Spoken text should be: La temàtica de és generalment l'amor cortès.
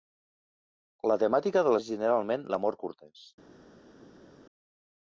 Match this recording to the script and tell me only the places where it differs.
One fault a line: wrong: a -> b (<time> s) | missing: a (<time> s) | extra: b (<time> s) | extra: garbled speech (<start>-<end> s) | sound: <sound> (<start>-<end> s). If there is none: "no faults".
no faults